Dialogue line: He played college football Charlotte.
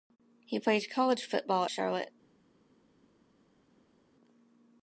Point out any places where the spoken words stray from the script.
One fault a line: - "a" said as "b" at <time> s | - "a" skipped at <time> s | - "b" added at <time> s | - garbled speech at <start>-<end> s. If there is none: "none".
none